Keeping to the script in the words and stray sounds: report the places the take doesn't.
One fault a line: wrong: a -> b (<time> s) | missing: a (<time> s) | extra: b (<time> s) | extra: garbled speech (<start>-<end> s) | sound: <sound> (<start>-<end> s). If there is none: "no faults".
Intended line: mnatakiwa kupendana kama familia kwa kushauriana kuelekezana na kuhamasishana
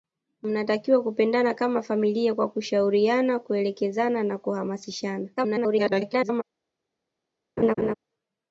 extra: garbled speech (5.4-6.4 s)
sound: laugh (7.6-7.9 s)